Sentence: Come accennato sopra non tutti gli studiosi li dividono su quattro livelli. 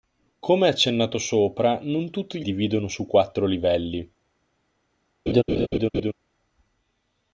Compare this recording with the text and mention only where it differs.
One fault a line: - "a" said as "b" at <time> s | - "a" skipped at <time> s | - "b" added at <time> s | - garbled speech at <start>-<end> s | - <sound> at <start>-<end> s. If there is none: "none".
- "gli studiosi li" skipped at 2.4 s
- laugh at 5.3-6.1 s